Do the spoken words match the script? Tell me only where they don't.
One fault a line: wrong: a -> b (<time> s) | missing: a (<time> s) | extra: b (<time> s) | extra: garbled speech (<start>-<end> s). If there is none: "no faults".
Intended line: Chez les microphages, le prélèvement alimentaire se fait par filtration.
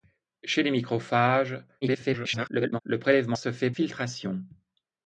extra: garbled speech (1.8-2.8 s)
missing: alimentaire (3.4 s)
missing: par (3.7 s)